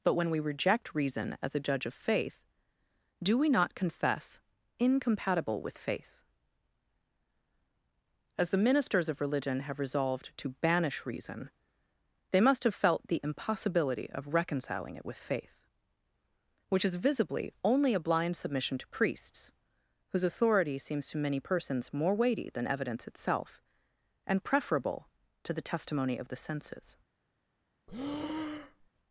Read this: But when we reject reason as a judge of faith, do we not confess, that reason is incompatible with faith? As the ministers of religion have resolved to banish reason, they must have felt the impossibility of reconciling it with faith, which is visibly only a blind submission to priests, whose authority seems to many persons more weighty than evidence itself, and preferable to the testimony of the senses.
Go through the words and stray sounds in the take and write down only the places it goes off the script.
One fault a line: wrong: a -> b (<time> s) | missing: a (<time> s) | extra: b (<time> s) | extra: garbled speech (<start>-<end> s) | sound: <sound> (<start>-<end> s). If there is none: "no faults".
missing: that reason is (4.4 s)
sound: breath (27.9-28.9 s)